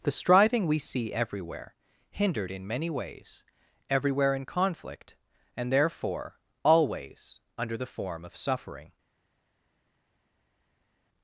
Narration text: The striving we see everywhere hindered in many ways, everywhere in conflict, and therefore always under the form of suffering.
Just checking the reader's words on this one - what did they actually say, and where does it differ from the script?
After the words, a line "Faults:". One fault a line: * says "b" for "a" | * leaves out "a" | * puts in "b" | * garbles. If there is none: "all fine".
The striving we see everywhere hindered in many ways, everywhere in conflict, and therefore always under the form of suffering.
Faults:
all fine